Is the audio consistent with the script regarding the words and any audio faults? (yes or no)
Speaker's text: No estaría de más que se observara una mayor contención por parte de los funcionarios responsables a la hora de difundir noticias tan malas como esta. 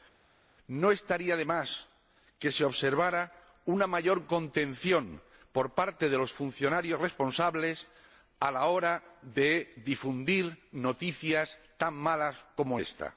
yes